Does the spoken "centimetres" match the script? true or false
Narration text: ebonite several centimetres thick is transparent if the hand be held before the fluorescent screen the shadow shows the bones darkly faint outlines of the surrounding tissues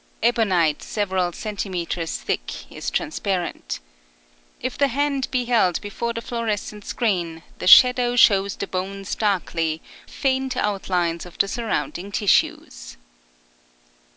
true